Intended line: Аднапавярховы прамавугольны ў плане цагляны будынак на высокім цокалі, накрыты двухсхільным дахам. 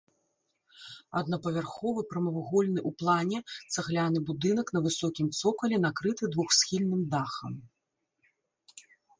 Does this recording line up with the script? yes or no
yes